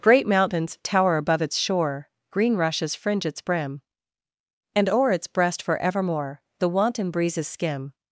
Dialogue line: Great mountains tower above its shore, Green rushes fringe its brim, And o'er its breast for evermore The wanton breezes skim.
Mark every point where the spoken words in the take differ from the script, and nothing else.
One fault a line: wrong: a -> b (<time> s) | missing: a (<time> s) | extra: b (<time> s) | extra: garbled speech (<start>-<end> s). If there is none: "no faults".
no faults